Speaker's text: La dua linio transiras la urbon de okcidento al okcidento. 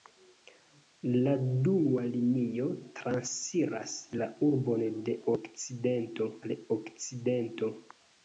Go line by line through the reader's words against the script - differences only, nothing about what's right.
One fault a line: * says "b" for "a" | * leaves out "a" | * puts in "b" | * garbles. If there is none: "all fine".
all fine